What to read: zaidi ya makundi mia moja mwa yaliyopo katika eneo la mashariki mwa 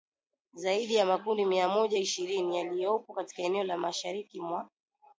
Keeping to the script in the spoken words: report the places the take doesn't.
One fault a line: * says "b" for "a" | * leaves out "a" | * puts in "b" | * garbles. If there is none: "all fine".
* says "ishirini" for "mwa"